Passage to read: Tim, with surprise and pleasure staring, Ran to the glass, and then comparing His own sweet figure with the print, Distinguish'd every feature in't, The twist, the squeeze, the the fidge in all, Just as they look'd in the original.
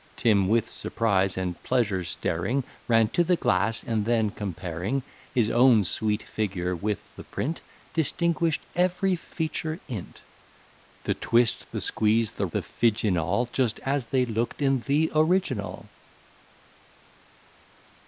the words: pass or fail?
pass